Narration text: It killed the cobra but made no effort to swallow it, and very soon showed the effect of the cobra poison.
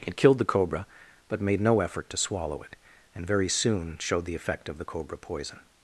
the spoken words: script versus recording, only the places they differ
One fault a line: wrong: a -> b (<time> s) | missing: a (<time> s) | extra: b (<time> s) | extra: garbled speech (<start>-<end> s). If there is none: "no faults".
no faults